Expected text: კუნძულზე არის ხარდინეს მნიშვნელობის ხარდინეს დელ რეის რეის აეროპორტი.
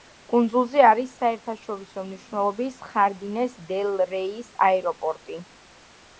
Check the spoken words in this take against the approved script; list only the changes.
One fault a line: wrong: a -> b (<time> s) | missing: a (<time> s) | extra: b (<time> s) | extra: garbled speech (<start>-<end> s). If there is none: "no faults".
wrong: ხარდინეს -> საერთაშორისო (1.2 s)
missing: რეის (4.5 s)